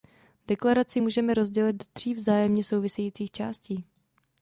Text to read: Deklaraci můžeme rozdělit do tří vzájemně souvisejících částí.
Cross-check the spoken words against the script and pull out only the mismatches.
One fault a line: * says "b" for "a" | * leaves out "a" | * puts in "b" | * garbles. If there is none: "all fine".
all fine